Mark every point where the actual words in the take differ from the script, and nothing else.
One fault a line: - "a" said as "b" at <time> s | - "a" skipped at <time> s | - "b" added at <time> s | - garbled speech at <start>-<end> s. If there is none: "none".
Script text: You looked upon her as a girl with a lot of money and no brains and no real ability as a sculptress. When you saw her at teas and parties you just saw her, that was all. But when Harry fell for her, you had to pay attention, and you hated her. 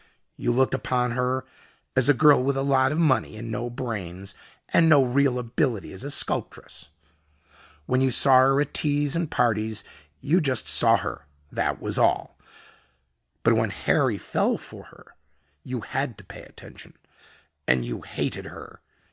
none